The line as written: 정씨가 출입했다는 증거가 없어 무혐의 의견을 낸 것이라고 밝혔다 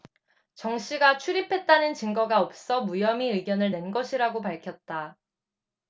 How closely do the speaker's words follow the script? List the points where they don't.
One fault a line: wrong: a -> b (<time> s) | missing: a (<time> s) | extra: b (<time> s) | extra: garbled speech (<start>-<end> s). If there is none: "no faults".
no faults